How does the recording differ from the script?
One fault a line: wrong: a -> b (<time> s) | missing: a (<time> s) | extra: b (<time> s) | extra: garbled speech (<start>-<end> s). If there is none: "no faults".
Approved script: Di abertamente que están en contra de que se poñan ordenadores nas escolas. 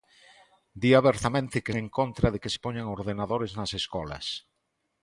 missing: están (1.7 s)